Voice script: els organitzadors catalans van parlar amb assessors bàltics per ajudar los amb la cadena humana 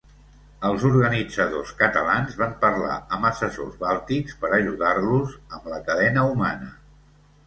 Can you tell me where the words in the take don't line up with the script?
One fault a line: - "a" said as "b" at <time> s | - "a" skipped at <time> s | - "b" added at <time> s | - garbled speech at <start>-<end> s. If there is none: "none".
none